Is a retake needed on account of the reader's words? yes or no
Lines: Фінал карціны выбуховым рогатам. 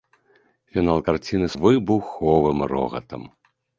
no